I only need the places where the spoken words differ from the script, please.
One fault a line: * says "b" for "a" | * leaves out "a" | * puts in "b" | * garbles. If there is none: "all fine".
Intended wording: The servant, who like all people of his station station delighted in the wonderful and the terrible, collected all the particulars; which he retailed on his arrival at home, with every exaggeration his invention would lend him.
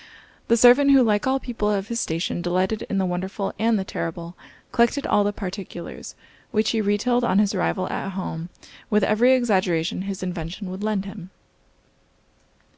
* leaves out "station"